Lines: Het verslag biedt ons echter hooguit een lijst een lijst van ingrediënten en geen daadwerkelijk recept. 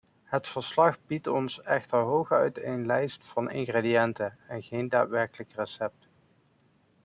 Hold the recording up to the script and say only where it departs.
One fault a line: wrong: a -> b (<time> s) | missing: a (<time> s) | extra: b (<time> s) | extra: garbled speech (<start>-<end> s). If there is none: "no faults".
missing: een lijst (3.2 s)